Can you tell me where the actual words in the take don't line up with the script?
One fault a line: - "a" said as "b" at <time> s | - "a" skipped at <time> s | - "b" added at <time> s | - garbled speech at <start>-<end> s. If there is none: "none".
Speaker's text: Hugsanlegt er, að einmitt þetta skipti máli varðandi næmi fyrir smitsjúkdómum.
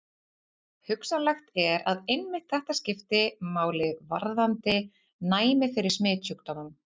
none